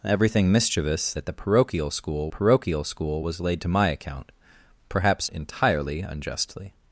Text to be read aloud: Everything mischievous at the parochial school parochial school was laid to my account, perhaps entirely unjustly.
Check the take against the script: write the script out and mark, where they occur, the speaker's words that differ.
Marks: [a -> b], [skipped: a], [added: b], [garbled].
Everything mischievous at the parochial school parochial school was laid to my account, perhaps entirely unjustly.